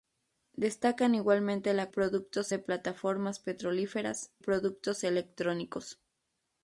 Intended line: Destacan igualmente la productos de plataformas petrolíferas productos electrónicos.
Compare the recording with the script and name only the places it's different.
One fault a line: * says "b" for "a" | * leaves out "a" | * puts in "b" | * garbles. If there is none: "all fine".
all fine